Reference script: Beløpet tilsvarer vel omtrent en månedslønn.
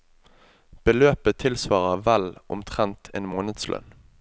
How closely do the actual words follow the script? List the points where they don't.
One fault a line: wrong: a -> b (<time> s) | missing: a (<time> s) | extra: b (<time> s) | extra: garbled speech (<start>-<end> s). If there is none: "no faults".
no faults